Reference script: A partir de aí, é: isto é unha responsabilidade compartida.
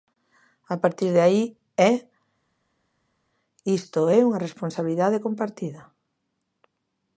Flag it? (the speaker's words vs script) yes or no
no